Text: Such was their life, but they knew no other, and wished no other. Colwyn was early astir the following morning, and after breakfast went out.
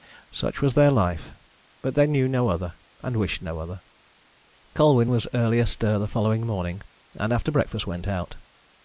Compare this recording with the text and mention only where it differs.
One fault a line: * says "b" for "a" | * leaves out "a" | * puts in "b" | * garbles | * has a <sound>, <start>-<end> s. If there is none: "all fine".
all fine